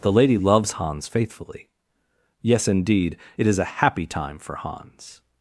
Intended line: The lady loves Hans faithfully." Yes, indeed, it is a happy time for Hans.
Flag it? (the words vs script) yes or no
no